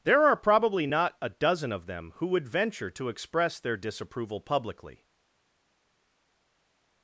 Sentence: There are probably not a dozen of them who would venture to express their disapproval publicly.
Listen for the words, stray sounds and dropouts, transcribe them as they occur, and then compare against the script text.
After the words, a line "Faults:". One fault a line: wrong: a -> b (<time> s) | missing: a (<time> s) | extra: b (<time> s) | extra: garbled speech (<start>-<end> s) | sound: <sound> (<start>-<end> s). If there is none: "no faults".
There are probably not a dozen of them who would venture to express their disapproval publicly.
Faults:
no faults